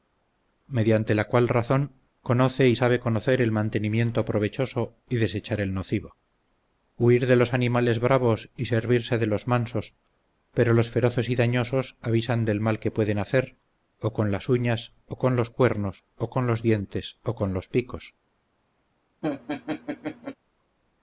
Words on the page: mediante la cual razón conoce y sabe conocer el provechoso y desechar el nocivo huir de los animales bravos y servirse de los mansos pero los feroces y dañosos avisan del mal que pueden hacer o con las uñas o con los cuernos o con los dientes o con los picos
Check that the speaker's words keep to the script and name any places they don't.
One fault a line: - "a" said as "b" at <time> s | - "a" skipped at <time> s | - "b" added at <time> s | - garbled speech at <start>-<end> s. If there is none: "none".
- "mantenimiento" added at 3.5 s